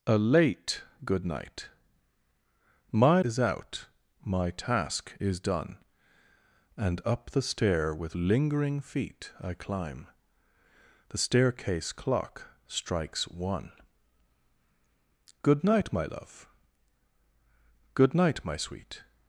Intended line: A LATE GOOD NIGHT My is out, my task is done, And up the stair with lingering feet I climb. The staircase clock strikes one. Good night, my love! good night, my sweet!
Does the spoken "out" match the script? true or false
true